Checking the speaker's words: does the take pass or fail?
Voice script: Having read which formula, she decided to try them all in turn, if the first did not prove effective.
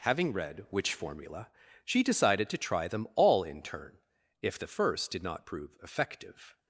pass